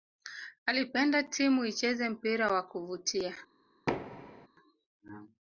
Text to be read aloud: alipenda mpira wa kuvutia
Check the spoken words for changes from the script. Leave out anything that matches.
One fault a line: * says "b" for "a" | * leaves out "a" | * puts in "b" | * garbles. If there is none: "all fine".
* puts in "timu icheze"